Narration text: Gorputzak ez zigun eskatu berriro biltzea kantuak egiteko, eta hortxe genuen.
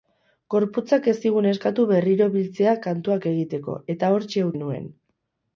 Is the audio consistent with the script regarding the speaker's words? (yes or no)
yes